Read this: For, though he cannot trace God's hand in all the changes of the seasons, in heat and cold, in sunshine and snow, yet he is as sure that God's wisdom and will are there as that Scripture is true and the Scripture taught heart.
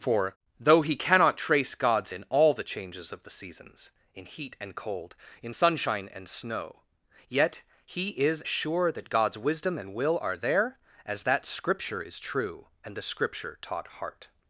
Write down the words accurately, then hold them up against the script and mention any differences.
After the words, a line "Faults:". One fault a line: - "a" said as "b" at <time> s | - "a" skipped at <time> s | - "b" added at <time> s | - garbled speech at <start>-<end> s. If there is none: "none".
For, though he cannot trace God's in all the changes of the seasons, in heat and cold, in sunshine and snow, yet he is sure that God's wisdom and will are there as that Scripture is true and the Scripture taught heart.
Faults:
- "hand" skipped at 2.1 s
- "as" skipped at 8.4 s